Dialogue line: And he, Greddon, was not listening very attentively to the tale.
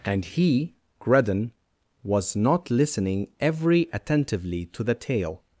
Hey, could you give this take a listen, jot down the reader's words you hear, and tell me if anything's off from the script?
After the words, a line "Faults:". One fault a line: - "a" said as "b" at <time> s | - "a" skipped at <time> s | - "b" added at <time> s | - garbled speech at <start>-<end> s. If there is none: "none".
And he, Greddon, was not listening every attentively to the tale.
Faults:
- "very" said as "every" at 3.4 s